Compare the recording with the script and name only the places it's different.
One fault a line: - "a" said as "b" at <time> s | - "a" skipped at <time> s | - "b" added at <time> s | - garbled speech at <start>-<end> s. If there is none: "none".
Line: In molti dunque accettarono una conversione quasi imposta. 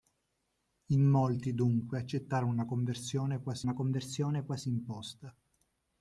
- "una conversione quasi" added at 3.6 s